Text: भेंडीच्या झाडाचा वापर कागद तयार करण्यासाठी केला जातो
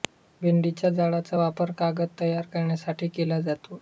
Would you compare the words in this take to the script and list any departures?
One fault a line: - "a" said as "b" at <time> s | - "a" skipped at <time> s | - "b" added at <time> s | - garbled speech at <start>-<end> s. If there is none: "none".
none